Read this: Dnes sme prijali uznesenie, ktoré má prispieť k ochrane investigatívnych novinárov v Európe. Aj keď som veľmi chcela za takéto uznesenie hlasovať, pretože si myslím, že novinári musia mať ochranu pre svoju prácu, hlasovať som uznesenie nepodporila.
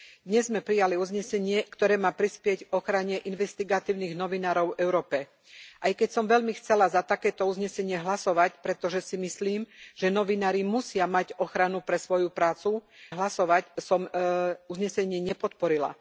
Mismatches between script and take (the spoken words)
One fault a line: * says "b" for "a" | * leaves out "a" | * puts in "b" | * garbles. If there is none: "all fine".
all fine